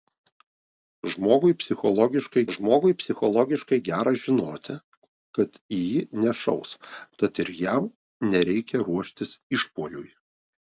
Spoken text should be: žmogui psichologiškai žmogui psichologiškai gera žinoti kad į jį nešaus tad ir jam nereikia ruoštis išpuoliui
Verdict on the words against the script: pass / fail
pass